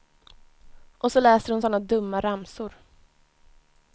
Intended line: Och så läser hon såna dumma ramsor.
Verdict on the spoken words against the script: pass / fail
pass